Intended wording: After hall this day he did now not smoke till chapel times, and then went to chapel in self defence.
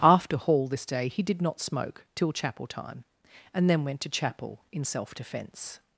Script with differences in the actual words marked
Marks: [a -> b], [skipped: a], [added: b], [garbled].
After hall this day he did [skipped: now] not smoke till chapel [times, -> time] and then went to chapel in self defence.